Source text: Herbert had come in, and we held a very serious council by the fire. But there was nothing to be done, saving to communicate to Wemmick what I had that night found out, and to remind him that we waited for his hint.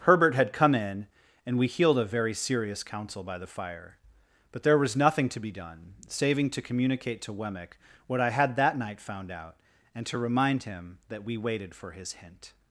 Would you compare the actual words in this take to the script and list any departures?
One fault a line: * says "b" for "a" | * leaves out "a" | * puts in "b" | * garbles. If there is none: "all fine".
* says "healed" for "held"